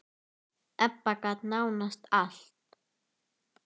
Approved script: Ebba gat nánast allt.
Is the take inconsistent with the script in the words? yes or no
no